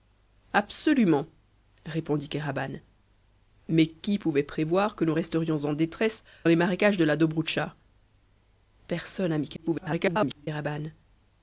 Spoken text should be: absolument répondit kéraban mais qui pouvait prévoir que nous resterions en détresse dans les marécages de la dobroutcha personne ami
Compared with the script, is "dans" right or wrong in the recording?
wrong